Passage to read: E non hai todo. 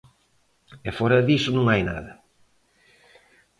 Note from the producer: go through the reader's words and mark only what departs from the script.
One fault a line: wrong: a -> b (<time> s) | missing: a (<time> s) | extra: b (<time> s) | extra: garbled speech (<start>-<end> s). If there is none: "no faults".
extra: fóra diso (1.0 s)
wrong: todo -> nada (1.9 s)